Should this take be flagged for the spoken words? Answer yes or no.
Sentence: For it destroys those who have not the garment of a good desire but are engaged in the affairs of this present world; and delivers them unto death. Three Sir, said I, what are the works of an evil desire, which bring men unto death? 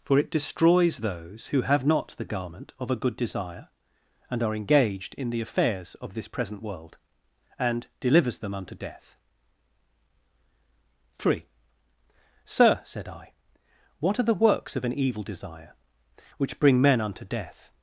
yes